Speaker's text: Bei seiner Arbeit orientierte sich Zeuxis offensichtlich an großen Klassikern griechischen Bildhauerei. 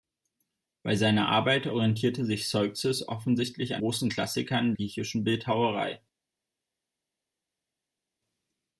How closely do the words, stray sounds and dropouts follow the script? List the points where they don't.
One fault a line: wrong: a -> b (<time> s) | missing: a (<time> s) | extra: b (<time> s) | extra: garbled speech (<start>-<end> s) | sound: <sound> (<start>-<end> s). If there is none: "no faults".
no faults